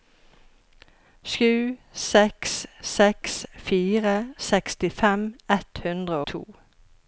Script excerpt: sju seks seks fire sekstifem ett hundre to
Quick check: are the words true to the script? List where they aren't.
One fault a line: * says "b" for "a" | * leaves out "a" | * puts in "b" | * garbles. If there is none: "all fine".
all fine